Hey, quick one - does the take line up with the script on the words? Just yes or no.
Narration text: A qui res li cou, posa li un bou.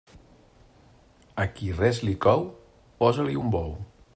yes